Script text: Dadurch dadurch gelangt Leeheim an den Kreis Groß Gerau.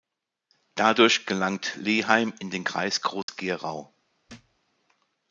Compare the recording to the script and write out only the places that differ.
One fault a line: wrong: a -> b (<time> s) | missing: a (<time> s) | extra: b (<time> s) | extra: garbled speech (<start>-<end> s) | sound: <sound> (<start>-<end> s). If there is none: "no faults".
missing: dadurch (1.3 s)
wrong: an -> in (2.4 s)
sound: dropout (3.2-3.3 s)
sound: thud (4.3-4.6 s)